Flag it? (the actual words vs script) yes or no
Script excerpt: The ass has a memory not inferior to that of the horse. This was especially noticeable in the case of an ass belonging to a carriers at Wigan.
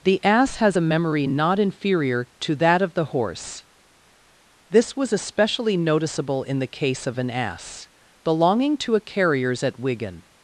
no